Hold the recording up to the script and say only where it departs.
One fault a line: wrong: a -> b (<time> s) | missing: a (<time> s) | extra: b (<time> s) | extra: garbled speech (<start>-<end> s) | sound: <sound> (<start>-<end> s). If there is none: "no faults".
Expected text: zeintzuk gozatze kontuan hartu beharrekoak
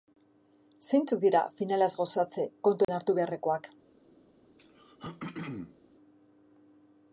extra: dira finalaz (1.2 s)
sound: dropout (2.8-2.9 s)
sound: throat clearing (4.6-5.8 s)